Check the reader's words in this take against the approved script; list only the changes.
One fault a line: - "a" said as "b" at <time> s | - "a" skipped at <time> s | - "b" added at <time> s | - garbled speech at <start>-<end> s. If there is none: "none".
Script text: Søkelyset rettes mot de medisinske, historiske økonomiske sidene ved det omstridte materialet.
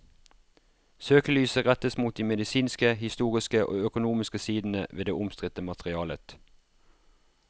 - "og" added at 3.6 s